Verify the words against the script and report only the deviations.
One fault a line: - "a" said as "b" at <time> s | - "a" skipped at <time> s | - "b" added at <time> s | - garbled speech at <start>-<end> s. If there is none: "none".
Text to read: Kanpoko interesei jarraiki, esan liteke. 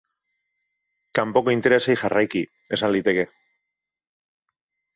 none